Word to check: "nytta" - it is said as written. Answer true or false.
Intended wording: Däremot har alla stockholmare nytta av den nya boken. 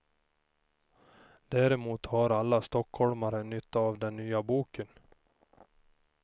true